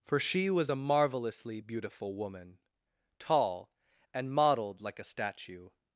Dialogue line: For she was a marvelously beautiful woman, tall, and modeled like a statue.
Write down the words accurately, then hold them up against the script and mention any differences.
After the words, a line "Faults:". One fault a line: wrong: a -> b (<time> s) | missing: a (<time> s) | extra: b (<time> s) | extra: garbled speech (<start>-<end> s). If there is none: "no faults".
For she was a marvelously beautiful woman, tall, and modeled like a statue.
Faults:
no faults